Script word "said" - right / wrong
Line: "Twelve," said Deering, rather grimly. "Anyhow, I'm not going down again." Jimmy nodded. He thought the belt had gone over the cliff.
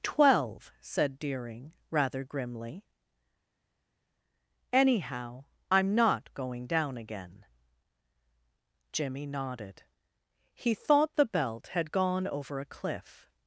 right